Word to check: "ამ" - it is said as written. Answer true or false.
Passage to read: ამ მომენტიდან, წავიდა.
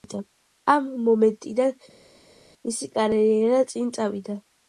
true